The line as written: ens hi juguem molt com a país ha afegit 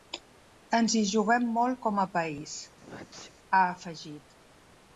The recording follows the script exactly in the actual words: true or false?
true